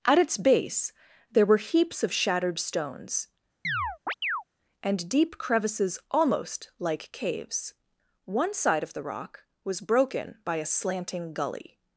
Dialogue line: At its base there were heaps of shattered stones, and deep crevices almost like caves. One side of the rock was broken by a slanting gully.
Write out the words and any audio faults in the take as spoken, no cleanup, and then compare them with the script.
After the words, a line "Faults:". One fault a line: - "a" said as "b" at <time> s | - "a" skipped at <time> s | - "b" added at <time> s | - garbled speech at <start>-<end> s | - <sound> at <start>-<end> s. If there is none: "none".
At its base there were heaps of shattered stones, and deep crevices almost like caves. One side of the rock was broken by a slanting gully.
Faults:
- chirp at 3.6-4.4 s